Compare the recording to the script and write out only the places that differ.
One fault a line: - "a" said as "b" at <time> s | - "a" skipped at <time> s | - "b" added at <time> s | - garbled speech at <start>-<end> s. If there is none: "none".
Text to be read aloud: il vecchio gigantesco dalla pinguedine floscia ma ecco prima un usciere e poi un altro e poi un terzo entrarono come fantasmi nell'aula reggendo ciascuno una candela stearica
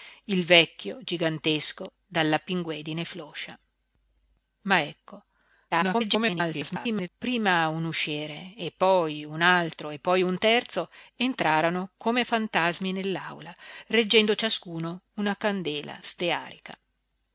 - garbled speech at 5.7-7.1 s